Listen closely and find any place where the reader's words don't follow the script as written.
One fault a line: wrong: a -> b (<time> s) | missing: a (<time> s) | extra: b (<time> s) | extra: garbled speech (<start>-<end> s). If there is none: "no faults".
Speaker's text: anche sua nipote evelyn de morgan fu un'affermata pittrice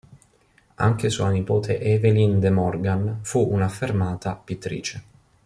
no faults